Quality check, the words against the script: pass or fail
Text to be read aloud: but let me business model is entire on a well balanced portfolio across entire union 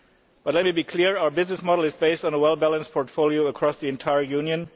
fail